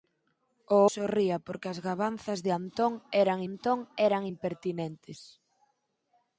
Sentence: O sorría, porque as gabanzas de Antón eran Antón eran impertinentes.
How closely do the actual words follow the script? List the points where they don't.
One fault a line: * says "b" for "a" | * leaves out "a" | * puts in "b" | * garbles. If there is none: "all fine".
all fine